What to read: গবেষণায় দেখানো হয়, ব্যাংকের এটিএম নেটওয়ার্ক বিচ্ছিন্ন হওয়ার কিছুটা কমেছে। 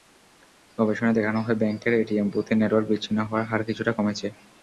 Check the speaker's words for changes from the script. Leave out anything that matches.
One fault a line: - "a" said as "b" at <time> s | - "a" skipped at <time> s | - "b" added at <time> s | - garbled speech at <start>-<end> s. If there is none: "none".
- "বুথে" added at 2.3 s
- "হার" added at 3.5 s